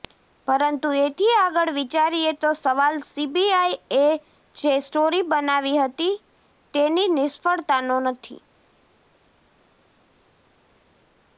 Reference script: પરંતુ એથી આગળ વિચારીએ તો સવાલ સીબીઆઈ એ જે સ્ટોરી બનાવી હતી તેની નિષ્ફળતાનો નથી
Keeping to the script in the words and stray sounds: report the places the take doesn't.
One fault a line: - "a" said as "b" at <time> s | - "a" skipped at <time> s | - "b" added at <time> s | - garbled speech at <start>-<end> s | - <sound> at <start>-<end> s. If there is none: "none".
none